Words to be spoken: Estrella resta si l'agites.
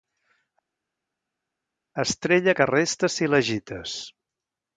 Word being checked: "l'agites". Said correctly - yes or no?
yes